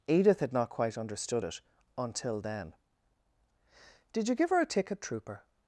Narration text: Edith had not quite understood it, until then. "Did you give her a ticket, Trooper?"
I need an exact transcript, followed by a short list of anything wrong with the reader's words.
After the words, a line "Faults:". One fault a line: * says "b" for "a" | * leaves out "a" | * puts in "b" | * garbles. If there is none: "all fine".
Edith had not quite understood it, until then. "Did you give her a ticket, Trooper?"
Faults:
all fine